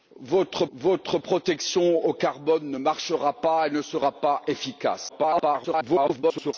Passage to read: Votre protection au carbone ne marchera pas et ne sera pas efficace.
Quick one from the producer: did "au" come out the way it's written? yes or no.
yes